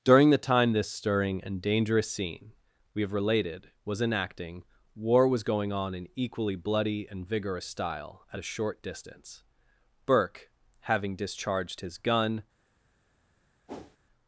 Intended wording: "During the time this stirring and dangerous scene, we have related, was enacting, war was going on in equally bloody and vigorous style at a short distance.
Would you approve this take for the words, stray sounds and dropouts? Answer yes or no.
no